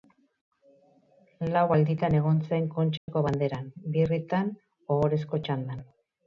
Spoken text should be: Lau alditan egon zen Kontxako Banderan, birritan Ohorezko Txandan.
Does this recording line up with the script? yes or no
yes